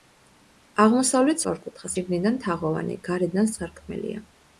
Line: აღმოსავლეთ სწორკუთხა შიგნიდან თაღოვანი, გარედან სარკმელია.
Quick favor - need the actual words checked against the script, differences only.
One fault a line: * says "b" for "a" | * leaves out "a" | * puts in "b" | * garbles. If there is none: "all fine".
all fine